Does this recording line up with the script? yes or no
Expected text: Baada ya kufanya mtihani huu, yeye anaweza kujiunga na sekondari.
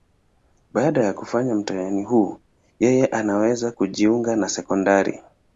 yes